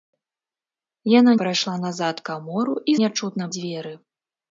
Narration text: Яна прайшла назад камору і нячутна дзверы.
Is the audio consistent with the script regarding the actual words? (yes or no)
yes